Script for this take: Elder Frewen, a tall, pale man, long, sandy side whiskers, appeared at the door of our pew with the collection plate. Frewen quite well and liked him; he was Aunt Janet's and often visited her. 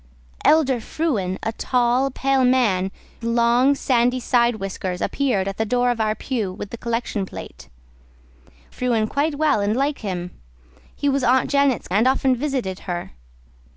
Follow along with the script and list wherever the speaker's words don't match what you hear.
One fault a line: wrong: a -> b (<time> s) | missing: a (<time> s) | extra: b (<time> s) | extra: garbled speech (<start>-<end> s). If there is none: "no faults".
no faults